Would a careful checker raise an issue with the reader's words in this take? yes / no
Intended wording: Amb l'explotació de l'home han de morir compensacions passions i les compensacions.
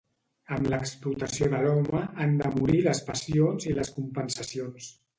yes